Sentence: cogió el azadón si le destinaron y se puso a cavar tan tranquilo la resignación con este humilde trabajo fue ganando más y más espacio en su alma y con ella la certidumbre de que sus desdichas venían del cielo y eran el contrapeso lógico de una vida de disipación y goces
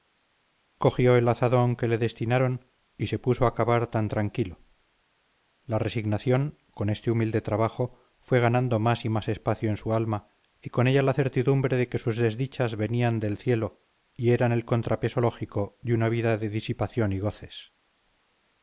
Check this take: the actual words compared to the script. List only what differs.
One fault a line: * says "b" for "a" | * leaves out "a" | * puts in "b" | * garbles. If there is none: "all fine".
* says "que" for "si"